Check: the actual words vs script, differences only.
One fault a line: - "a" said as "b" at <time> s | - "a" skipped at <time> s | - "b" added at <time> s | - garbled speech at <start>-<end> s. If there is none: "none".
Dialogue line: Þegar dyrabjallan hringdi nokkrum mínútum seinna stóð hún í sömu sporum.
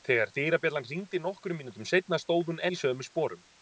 none